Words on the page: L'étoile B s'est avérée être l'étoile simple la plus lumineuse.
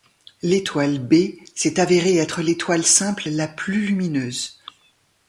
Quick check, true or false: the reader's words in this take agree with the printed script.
true